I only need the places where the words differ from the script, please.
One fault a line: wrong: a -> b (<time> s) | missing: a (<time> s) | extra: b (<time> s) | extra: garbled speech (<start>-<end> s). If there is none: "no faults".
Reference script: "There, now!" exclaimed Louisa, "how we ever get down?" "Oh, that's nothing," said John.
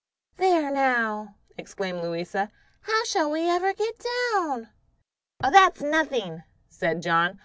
extra: shall (3.0 s)